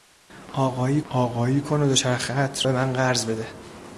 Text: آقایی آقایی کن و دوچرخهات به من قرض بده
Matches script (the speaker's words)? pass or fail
pass